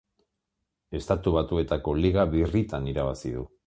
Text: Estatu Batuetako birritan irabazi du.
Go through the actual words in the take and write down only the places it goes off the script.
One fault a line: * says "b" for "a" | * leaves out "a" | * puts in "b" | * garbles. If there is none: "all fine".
* puts in "liga"